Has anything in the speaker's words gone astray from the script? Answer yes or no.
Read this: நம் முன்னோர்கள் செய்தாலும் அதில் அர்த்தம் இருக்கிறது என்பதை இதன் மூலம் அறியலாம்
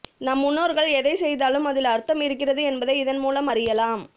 yes